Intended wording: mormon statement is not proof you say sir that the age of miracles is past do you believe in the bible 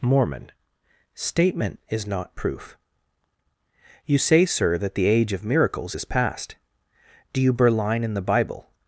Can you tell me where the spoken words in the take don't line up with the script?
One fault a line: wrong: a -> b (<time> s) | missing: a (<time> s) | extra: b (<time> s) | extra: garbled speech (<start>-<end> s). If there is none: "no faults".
wrong: believe -> berline (7.5 s)